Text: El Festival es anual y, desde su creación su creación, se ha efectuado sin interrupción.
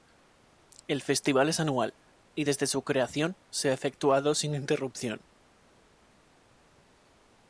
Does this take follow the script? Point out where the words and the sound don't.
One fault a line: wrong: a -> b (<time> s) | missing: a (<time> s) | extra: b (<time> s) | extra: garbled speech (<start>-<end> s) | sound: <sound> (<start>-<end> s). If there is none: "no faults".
missing: su creación (3.3 s)